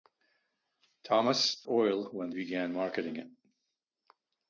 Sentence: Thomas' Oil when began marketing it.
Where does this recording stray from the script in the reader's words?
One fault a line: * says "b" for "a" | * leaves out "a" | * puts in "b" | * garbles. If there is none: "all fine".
all fine